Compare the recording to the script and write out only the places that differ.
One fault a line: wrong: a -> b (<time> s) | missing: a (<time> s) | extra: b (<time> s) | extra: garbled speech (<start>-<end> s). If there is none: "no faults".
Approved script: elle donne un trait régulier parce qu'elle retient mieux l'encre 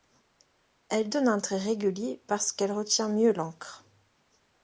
no faults